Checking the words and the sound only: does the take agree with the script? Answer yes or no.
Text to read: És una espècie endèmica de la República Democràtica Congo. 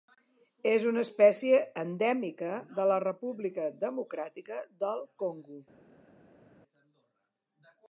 no